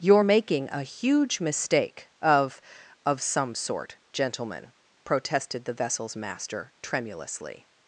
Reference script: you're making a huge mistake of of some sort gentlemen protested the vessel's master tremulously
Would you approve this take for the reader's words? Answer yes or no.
yes